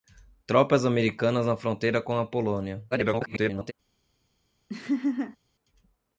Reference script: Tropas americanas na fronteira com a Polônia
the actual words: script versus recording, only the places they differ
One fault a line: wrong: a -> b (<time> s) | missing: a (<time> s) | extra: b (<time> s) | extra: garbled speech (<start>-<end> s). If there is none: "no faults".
extra: garbled speech (2.9-3.7 s)